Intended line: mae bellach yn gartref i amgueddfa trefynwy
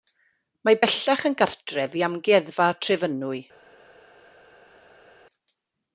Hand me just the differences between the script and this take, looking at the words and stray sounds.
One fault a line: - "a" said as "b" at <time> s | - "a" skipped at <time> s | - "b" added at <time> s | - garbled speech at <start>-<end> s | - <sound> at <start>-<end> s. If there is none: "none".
none